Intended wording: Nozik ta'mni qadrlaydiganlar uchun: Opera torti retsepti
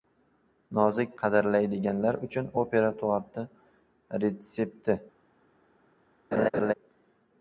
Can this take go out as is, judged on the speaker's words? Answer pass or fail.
fail